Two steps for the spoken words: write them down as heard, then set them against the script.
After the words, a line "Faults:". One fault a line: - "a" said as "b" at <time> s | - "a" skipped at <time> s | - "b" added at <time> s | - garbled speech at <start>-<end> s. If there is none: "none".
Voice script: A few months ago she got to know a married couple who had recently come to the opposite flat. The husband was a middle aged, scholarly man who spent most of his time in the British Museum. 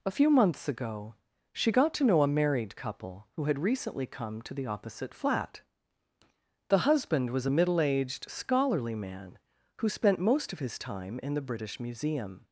A few months ago she got to know a married couple who had recently come to the opposite flat. The husband was a middle aged, scholarly man who spent most of his time in the British Museum.
Faults:
none